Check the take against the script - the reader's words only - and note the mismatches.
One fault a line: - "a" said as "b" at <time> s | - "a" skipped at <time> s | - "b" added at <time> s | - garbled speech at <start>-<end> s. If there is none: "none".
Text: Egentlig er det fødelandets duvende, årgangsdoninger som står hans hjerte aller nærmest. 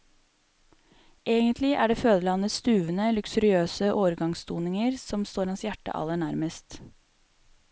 - "luksuriøse" added at 3.1 s